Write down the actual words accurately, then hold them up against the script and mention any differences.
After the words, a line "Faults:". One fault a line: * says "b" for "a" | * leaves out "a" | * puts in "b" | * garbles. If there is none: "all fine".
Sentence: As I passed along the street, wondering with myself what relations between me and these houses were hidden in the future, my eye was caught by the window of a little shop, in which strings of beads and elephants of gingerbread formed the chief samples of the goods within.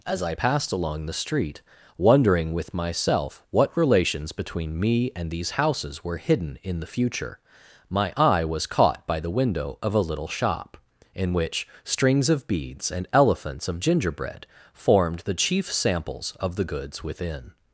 As I passed along the street, wondering with myself what relations between me and these houses were hidden in the future, my eye was caught by the window of a little shop, in which strings of beads and elephants of gingerbread formed the chief samples of the goods within.
Faults:
all fine